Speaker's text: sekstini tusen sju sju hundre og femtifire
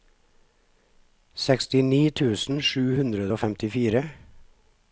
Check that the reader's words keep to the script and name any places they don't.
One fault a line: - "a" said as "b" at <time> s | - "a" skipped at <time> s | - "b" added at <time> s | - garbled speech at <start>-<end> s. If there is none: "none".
- "sju" skipped at 2.9 s